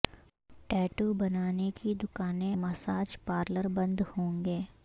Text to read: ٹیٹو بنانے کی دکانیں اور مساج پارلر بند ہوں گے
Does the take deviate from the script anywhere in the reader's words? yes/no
yes